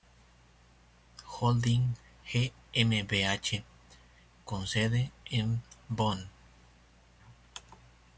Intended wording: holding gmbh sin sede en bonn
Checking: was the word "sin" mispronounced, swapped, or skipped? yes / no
yes